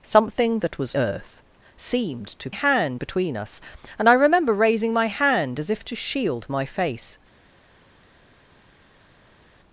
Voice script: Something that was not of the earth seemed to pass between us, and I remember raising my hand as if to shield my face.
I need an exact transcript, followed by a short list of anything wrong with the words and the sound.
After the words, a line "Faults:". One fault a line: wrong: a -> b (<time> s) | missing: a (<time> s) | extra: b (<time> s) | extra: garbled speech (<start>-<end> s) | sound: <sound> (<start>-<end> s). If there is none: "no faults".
Something that was earth seemed to hand between us, and I remember raising my hand as if to shield my face.
Faults:
missing: not of the (1.0 s)
wrong: pass -> hand (2.5 s)